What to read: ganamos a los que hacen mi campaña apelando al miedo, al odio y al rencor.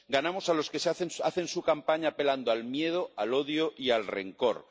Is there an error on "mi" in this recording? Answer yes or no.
yes